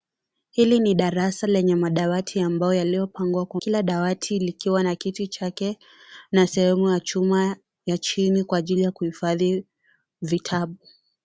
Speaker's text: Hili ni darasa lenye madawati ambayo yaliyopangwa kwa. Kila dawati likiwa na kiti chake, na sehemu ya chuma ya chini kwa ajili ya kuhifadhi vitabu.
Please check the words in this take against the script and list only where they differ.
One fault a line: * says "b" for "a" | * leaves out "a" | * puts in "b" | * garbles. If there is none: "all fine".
all fine